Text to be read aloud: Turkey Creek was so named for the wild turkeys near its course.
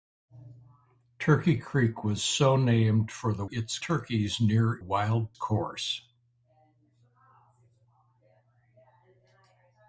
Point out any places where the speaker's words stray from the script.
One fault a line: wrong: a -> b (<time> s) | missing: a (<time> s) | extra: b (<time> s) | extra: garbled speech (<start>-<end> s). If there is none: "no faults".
wrong: wild -> its (3.5 s)
wrong: its -> wild (4.8 s)